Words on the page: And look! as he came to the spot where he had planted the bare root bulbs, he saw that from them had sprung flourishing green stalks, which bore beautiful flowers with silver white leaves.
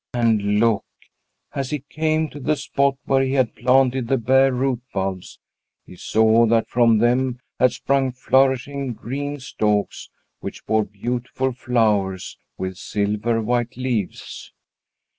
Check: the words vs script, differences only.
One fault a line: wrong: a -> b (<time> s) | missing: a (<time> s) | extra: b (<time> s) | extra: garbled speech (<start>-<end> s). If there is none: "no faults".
no faults